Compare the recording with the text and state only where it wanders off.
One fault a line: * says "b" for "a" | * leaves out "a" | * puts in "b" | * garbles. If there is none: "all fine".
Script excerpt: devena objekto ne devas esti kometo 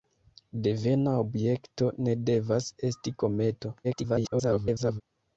* garbles